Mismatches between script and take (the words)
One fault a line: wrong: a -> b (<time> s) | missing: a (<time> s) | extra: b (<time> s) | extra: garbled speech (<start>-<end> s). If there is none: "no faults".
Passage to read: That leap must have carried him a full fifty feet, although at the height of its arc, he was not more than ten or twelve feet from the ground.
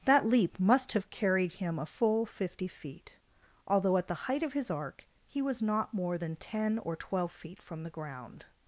wrong: its -> his (4.5 s)